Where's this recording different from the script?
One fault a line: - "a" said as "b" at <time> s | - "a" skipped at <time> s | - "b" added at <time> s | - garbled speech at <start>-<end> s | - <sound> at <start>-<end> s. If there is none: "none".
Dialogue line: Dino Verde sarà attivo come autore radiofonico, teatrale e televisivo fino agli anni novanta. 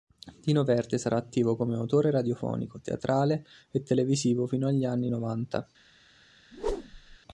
- whoosh at 6.5-7.2 s